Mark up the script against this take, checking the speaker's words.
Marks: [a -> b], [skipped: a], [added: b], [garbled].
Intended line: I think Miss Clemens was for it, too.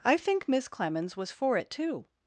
I think Miss Clemens was for it, too.